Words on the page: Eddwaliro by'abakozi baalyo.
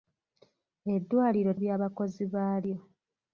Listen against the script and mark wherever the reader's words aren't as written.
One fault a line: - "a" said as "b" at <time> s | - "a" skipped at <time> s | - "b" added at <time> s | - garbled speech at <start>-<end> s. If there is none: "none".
none